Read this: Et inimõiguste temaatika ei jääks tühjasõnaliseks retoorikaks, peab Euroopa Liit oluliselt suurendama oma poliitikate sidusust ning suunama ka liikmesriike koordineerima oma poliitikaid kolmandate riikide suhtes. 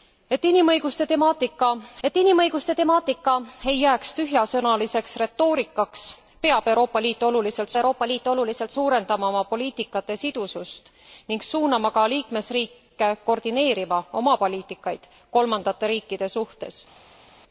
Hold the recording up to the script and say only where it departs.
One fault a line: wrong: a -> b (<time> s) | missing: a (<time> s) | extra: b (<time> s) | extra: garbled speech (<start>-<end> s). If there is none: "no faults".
extra: et inimõiguste temaatika (2.1 s)
extra: Euroopa Liit oluliselt (7.8 s)